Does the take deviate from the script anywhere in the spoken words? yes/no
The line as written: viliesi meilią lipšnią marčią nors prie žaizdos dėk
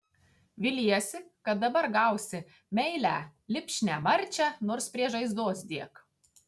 yes